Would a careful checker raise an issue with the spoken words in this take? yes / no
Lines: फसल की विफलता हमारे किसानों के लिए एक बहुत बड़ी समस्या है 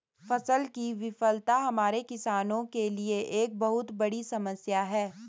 no